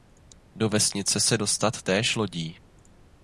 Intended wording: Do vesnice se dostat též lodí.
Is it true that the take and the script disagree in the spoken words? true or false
false